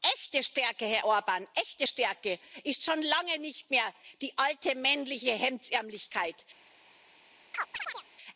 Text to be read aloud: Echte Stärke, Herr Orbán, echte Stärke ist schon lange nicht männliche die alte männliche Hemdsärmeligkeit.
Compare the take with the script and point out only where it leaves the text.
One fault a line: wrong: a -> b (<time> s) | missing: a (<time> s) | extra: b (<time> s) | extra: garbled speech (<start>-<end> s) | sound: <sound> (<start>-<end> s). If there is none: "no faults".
wrong: männliche -> mehr (3.7 s)
sound: chirp (7.5-8.0 s)